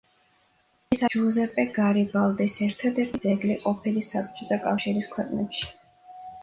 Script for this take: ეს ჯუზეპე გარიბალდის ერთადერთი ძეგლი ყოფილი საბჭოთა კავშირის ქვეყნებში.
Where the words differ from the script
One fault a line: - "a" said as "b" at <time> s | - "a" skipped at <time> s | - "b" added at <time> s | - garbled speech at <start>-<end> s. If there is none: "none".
none